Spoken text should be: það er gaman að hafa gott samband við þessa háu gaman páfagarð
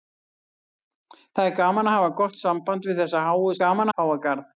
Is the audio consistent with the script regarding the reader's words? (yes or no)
yes